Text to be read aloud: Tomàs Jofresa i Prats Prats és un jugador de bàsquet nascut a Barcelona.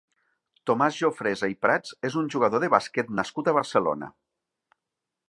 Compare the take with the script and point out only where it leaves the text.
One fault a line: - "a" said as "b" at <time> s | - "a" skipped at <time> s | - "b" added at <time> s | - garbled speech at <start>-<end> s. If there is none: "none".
- "Prats" skipped at 1.9 s